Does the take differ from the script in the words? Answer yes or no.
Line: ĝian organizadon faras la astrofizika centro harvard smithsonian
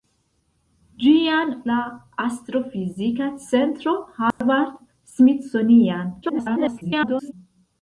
yes